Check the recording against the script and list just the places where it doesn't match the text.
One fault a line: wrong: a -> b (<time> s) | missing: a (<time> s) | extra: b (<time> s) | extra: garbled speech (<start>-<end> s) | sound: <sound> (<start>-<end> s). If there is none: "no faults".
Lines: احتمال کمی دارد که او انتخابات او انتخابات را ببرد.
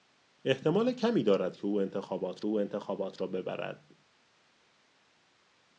no faults